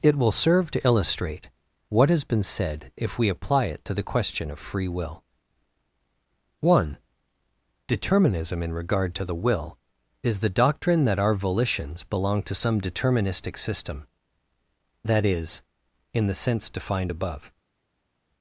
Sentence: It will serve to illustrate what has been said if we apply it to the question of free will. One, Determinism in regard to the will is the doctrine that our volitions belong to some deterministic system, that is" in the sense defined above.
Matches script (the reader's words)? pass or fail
pass